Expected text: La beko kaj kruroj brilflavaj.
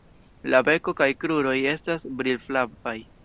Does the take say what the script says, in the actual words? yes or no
no